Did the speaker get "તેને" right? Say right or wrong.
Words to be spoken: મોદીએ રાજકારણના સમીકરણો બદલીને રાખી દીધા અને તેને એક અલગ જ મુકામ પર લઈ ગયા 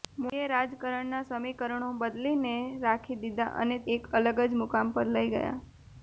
wrong